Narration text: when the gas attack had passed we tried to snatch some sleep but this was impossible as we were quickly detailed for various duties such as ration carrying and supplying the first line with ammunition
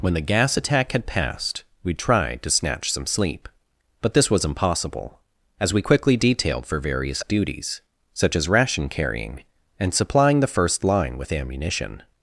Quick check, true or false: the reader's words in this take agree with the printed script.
false